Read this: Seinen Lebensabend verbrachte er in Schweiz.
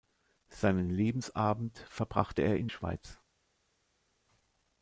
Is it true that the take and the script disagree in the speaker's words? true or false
false